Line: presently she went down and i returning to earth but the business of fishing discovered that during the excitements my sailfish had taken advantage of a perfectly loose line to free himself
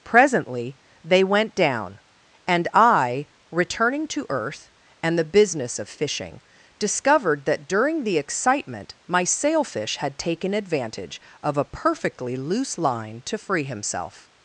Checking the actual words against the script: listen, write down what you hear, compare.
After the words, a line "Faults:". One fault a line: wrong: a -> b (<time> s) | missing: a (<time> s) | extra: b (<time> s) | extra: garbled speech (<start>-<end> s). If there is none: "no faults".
presently they went down and i returning to earth and the business of fishing discovered that during the excitement my sailfish had taken advantage of a perfectly loose line to free himself
Faults:
wrong: she -> they (1.0 s)
wrong: but -> and (5.0 s)
wrong: excitements -> excitement (8.2 s)